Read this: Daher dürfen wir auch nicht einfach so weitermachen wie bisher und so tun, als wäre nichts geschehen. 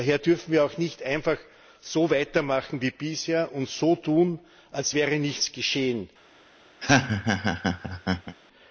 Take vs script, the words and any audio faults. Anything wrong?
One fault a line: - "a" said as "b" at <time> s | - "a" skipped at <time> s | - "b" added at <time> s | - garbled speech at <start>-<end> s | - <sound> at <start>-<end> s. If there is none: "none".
- laugh at 6.8-8.4 s